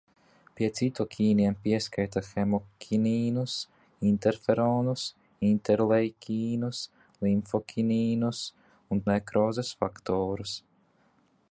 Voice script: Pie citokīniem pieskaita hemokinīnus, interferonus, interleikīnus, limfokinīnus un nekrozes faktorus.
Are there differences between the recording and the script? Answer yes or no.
no